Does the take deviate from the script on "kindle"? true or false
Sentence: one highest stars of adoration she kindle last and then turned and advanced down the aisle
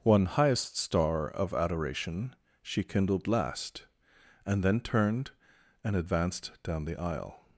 true